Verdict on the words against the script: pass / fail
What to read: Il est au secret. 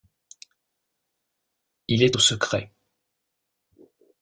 pass